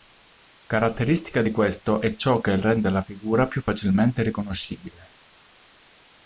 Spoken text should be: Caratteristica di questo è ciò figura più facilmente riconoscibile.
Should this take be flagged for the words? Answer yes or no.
yes